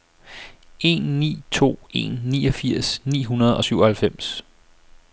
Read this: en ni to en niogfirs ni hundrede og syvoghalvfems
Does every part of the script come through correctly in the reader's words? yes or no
yes